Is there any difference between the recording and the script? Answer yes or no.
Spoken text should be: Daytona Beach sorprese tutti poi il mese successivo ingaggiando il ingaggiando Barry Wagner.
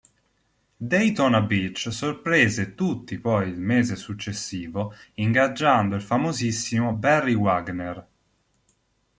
yes